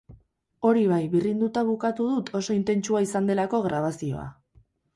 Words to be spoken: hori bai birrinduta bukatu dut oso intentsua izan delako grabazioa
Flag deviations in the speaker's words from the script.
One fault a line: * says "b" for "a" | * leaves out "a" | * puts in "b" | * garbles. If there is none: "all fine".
all fine